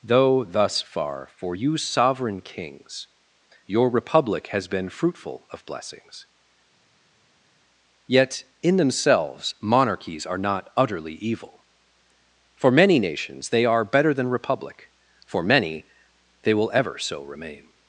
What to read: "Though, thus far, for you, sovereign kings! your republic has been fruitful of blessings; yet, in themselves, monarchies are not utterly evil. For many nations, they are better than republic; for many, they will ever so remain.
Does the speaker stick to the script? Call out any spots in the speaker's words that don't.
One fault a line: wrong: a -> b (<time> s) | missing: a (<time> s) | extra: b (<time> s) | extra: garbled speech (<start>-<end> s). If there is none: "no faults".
no faults